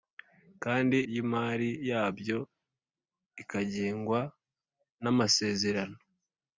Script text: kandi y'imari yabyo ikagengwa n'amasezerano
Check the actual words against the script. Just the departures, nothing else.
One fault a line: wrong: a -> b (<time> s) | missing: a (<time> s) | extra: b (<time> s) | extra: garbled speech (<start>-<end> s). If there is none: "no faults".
no faults